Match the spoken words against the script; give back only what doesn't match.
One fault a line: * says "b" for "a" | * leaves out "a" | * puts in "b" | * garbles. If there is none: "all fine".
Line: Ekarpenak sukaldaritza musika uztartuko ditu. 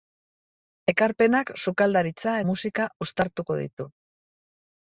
all fine